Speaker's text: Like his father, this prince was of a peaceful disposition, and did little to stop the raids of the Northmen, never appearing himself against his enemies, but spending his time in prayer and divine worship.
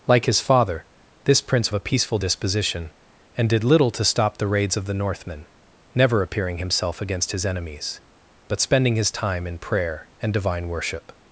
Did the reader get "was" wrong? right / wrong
wrong